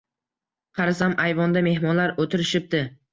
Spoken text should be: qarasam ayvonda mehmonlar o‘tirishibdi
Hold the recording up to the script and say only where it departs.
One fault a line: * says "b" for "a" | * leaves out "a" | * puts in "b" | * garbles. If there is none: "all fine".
all fine